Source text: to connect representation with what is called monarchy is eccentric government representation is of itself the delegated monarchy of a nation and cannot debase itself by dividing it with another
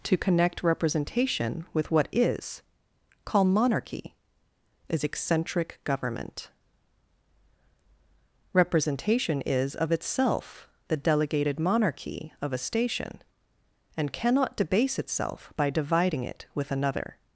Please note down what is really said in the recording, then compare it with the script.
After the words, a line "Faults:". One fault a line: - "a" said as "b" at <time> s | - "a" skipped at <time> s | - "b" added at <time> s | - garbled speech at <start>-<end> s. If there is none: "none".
to connect representation with what is call monarchy is eccentric government representation is of itself the delegated monarchy of a station and cannot debase itself by dividing it with another
Faults:
- "called" said as "call" at 3.2 s
- "nation" said as "station" at 12.6 s